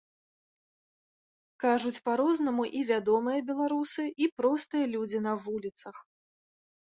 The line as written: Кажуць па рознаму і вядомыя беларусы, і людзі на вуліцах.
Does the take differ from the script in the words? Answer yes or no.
yes